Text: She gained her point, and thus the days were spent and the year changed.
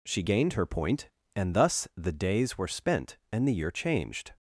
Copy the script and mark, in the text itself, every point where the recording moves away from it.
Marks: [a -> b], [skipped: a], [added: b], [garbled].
She gained her point, and thus the days were spent and the year changed.